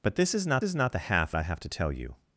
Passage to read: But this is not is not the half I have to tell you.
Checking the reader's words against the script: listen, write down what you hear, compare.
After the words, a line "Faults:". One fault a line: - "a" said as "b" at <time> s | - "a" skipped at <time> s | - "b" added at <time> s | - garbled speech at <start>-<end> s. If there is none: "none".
But this is not is not the half I have to tell you.
Faults:
none